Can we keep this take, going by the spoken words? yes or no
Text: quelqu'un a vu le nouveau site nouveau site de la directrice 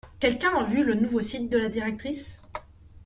no